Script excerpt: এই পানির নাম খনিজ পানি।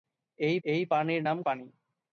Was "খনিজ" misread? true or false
true